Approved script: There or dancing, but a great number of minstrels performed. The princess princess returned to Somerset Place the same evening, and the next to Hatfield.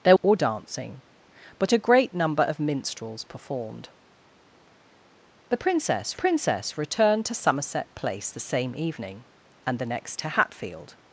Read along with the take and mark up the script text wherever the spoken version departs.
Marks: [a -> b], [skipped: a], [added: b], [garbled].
There or dancing, but a great number of minstrels performed. The princess princess returned to Somerset Place the same evening, and the next to Hatfield.